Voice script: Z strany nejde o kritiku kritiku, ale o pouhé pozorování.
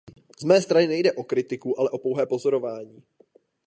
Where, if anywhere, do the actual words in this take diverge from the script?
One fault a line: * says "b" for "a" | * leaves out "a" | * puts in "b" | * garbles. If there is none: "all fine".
* puts in "mé"
* leaves out "kritiku"